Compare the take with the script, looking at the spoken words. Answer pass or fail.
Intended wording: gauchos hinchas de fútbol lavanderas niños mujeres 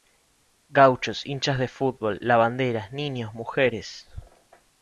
pass